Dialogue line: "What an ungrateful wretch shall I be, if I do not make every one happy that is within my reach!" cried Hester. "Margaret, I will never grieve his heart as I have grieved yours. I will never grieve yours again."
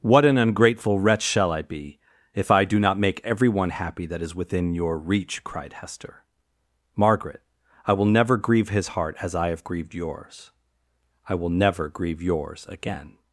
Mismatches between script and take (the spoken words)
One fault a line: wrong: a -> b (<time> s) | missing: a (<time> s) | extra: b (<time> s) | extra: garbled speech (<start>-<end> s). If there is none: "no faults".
wrong: my -> your (4.7 s)